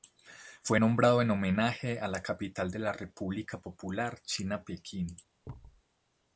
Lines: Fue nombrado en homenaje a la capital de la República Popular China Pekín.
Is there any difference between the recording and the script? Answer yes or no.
no